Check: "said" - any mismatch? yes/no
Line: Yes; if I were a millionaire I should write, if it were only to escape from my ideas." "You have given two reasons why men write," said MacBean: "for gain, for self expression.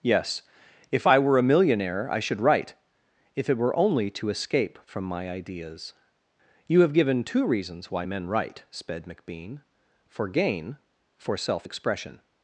yes